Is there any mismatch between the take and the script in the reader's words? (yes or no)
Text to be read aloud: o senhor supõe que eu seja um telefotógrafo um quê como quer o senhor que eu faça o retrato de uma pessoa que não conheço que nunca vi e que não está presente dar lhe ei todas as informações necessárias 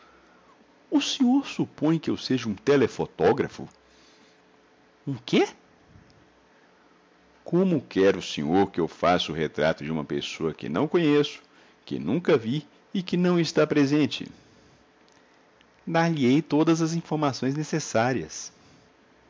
no